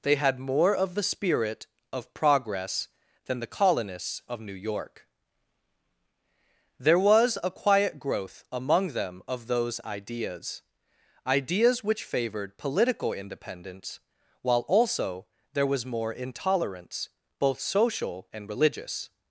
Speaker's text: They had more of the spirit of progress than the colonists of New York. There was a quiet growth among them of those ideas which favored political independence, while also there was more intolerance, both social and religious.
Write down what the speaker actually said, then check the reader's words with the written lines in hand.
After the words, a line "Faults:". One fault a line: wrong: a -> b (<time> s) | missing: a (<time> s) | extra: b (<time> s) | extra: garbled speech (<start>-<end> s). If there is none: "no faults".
They had more of the spirit of progress than the colonists of New York. There was a quiet growth among them of those ideas ideas which favored political independence, while also there was more intolerance, both social and religious.
Faults:
extra: ideas (11.3 s)